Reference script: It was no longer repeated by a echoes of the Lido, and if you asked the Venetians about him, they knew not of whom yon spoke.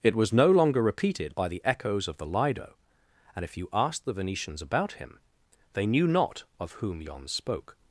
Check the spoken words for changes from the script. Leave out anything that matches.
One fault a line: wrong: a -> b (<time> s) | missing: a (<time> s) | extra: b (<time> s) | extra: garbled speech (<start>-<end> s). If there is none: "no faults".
wrong: a -> the (1.5 s)